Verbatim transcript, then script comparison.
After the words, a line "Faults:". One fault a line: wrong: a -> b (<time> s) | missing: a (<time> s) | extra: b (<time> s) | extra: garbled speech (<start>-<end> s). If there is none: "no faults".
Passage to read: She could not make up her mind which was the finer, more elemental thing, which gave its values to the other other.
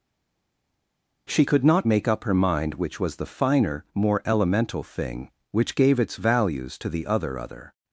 She could not make up her mind which was the finer, more elemental thing, which gave its values to the other other.
Faults:
no faults